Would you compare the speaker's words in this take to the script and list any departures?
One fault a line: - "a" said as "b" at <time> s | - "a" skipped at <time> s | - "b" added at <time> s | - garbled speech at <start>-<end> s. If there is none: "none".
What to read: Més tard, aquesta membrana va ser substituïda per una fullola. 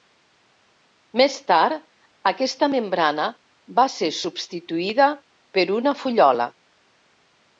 none